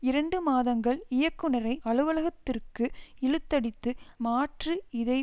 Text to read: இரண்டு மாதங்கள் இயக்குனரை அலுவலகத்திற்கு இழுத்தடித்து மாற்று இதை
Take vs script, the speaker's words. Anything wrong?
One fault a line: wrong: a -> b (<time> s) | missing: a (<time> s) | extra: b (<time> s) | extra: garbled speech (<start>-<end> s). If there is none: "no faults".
no faults